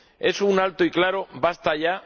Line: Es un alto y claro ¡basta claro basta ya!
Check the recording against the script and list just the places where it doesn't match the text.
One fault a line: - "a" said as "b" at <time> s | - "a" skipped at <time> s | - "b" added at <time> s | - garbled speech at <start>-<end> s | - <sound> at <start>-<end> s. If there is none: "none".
- "claro basta" skipped at 1.7 s